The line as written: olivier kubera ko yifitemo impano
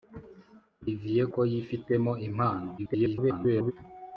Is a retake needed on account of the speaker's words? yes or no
yes